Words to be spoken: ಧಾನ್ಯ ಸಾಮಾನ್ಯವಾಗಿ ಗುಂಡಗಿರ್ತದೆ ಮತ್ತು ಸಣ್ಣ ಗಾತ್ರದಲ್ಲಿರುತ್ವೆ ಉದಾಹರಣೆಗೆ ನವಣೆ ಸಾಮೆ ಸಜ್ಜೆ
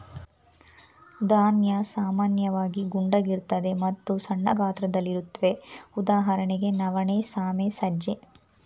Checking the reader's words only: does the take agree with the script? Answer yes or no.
yes